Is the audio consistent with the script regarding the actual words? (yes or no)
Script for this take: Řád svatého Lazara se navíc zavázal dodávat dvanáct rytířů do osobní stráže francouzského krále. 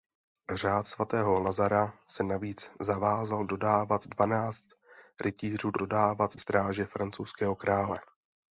no